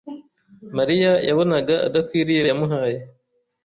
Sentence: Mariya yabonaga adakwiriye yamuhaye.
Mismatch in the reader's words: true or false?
false